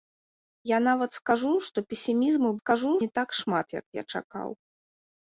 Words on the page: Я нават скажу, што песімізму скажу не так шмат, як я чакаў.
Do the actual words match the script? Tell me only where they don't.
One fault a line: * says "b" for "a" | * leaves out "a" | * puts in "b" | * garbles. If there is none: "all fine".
all fine